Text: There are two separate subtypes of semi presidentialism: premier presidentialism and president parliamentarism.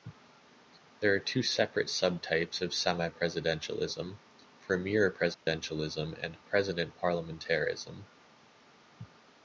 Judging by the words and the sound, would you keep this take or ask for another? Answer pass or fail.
fail